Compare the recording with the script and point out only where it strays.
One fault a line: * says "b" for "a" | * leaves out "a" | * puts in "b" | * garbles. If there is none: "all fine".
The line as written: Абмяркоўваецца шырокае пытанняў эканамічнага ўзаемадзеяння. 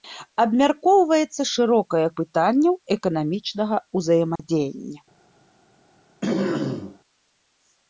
all fine